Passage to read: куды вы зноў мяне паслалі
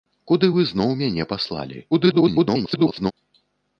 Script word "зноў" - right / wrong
right